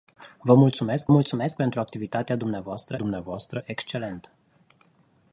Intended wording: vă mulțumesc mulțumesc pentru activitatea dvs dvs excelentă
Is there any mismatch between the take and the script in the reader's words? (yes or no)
no